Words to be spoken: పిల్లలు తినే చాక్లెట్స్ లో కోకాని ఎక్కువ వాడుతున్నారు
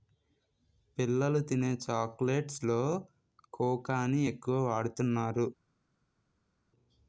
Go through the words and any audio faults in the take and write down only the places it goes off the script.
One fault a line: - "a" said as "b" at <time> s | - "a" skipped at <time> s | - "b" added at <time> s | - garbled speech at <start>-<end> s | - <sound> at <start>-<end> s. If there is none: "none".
none